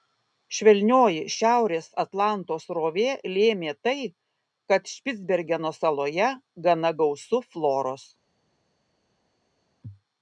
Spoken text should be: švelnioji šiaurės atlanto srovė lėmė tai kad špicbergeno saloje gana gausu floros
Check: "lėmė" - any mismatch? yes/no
no